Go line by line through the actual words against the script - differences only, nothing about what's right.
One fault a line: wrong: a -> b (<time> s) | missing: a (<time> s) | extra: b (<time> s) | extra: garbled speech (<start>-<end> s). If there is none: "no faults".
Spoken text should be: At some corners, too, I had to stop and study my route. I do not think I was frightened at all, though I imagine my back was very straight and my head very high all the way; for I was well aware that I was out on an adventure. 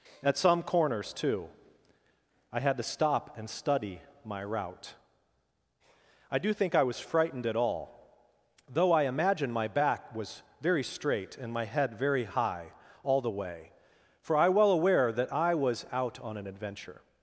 missing: not (6.5 s)
missing: was (14.5 s)